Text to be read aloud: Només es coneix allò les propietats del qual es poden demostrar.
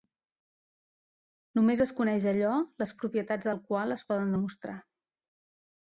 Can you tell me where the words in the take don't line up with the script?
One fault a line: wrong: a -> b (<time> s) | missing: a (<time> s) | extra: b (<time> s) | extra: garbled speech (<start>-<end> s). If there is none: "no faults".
no faults